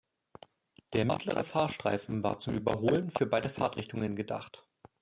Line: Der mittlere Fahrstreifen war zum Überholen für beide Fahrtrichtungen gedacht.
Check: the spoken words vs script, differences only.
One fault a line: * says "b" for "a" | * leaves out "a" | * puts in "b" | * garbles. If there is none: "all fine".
all fine